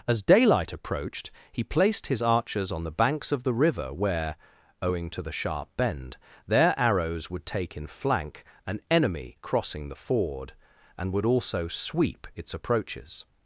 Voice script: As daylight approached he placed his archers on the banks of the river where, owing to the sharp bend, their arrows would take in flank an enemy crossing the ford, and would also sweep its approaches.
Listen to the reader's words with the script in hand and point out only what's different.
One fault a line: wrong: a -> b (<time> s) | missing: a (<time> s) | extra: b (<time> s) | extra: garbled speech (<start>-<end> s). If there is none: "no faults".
no faults